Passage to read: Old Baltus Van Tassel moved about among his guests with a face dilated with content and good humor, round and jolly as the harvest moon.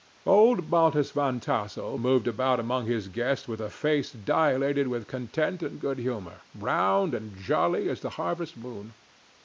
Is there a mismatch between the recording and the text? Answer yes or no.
no